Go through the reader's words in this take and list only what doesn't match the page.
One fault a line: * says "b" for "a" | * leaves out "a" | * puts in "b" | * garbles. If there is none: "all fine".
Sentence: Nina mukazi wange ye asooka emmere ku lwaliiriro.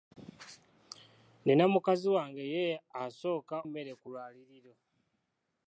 all fine